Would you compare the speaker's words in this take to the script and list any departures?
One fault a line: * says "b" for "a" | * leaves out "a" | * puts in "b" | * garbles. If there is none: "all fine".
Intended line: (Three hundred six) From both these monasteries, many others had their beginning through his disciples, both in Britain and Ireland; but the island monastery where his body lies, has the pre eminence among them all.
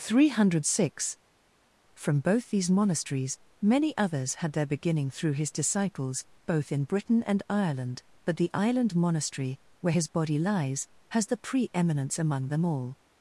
all fine